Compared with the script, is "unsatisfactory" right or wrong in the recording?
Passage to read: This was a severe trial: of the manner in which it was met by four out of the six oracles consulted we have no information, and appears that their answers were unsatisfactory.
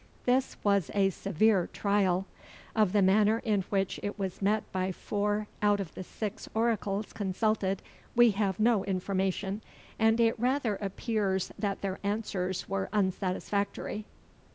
right